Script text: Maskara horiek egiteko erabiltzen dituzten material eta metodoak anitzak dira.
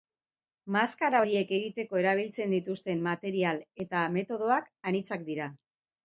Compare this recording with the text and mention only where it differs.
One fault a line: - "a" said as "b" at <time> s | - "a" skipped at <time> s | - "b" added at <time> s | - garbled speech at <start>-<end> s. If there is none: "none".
none